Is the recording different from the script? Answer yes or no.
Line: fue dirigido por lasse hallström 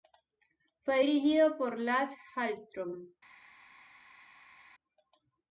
no